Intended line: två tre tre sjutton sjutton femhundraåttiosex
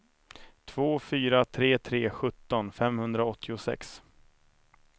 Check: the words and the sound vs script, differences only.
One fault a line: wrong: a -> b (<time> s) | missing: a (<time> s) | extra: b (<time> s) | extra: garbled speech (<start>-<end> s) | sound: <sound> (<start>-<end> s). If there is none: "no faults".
extra: fyra (1.0 s)
missing: sjutton (2.7 s)